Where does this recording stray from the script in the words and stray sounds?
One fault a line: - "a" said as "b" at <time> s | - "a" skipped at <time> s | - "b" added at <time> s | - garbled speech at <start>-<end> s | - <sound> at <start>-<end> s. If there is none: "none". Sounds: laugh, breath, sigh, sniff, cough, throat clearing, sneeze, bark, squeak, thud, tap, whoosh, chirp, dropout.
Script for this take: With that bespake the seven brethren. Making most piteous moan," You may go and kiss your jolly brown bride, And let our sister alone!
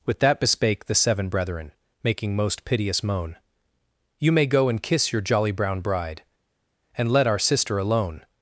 none